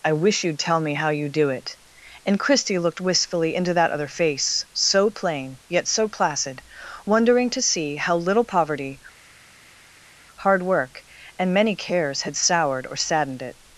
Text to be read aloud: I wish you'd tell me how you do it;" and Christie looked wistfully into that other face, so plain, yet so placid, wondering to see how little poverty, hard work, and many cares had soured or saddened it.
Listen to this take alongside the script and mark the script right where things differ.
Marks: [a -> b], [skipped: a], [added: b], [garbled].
I wish you'd tell me how you do it;" and Christie looked wistfully into that other face, so plain, yet so placid, wondering to see how little poverty, hard work, and many cares had soured or saddened it.